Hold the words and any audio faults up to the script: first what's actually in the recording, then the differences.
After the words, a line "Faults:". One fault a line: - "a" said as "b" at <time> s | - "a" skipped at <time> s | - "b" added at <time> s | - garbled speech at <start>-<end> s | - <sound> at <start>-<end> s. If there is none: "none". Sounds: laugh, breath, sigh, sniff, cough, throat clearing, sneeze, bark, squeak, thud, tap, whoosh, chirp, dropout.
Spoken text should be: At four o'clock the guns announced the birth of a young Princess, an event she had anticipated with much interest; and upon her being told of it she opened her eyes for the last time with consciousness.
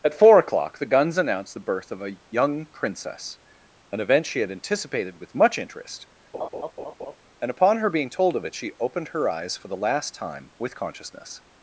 At four o'clock the guns announced the birth of a young Princess, an event she had anticipated with much interest; and upon her being told of it she opened her eyes for the last time with consciousness.
Faults:
- laugh at 6.3-7.2 s